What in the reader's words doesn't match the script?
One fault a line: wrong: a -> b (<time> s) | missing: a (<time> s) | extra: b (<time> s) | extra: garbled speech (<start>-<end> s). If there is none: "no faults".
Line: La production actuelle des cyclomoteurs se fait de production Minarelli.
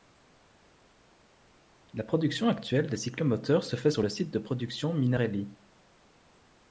extra: sur le site (3.9 s)